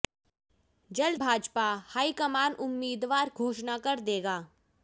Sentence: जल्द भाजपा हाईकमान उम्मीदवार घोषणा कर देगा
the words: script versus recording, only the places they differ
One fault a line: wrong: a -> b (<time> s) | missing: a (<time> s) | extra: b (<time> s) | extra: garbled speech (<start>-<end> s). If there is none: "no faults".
no faults